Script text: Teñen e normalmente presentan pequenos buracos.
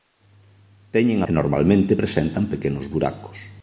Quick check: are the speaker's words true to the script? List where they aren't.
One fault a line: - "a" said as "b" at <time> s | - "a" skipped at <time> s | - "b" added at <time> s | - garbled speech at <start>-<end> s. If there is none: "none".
none